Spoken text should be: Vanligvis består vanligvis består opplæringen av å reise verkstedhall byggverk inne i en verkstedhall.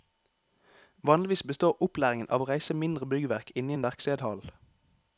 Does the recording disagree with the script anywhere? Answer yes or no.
yes